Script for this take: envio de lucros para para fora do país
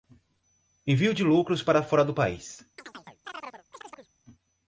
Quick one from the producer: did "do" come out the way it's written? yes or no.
yes